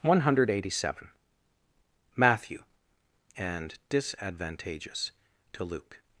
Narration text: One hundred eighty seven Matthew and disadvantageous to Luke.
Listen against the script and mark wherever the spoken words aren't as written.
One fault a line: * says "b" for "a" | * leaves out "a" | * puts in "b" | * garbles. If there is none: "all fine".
all fine